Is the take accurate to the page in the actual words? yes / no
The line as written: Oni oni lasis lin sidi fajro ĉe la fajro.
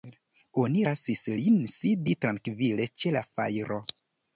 no